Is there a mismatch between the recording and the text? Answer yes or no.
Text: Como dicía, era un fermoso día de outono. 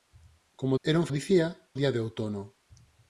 yes